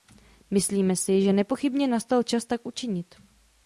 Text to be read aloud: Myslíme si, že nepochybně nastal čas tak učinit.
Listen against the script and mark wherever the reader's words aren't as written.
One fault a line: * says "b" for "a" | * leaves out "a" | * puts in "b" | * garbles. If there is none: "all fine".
all fine